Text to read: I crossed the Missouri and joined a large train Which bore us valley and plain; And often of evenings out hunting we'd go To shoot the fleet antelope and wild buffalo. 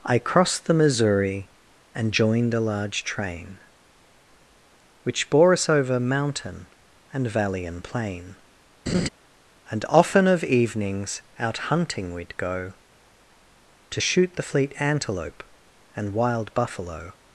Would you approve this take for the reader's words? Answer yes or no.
no